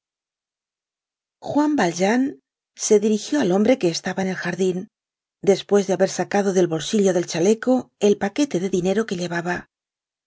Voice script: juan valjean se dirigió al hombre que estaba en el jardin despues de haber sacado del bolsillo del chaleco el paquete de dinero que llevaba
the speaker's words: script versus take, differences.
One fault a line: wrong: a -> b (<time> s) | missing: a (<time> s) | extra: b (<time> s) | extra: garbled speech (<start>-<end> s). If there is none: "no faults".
no faults